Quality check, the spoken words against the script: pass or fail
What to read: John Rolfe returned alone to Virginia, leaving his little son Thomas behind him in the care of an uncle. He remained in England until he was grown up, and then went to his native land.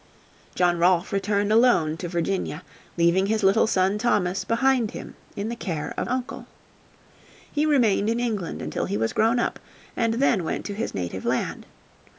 fail